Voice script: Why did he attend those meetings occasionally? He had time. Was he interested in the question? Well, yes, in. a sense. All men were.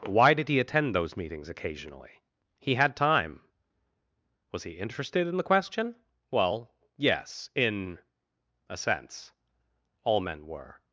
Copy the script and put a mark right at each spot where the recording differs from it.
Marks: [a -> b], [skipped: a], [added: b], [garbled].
Why did he attend those meetings occasionally? He had time. Was he interested in the question? Well, yes, in. a sense. All men were.